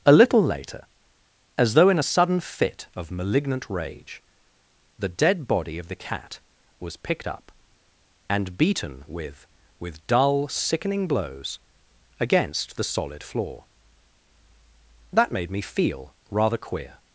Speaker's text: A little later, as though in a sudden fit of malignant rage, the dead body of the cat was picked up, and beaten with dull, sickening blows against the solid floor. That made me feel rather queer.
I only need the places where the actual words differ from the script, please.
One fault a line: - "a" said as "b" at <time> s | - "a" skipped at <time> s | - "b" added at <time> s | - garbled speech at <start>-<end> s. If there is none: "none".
- "with" added at 9.8 s